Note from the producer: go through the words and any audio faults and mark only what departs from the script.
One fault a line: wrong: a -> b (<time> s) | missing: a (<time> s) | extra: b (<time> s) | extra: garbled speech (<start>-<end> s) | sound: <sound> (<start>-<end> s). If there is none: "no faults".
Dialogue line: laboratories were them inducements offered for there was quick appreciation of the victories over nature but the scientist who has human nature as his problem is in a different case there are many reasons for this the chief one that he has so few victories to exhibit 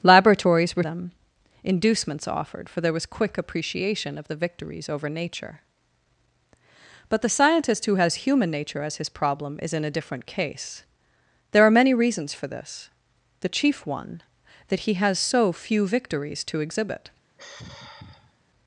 sound: sigh (17.4-18.4 s)